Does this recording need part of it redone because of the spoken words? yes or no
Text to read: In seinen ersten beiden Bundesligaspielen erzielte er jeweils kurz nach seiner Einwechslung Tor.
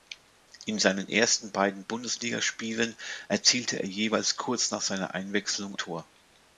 no